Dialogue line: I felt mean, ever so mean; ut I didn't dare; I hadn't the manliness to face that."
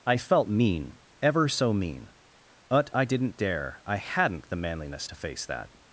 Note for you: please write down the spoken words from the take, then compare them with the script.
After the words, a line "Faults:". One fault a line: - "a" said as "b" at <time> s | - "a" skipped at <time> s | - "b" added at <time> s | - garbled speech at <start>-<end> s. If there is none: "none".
I felt mean, ever so mean; but I didn't dare; I hadn't the manliness to face that."
Faults:
- "ut" said as "but" at 2.7 s